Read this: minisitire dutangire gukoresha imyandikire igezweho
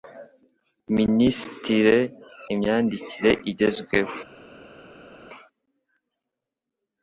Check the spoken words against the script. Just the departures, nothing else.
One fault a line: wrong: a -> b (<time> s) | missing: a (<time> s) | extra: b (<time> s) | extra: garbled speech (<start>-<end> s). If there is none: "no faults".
missing: dutangire gukoresha (2.0 s)